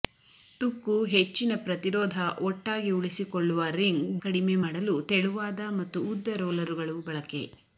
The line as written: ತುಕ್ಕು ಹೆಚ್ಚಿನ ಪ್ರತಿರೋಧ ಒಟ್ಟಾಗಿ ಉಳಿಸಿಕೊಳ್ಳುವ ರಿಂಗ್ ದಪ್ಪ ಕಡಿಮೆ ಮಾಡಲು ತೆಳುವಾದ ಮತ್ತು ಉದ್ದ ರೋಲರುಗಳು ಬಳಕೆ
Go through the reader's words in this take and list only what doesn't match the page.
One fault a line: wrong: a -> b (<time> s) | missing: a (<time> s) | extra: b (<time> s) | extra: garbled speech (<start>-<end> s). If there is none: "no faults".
missing: ದಪ್ಪ (4.0 s)